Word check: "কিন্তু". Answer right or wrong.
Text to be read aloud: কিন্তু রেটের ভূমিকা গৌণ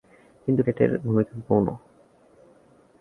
right